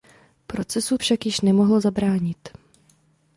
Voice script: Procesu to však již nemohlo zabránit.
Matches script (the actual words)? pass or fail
fail